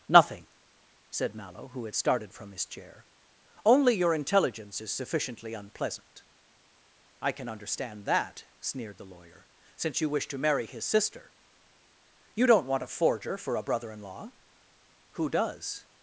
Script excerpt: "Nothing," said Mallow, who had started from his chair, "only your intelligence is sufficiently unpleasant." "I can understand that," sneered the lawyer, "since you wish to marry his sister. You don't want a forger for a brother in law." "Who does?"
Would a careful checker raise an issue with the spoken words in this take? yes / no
no